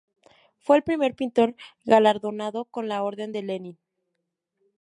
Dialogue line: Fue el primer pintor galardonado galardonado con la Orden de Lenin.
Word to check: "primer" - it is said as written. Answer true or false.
true